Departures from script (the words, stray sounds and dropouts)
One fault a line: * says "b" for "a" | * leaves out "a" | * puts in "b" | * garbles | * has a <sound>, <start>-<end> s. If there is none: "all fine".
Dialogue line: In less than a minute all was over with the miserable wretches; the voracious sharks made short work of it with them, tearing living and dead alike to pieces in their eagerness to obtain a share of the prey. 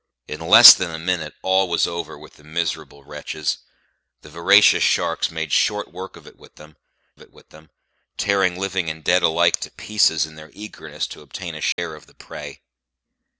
* puts in "it with them"
* has a dropout, 11.7-11.8 s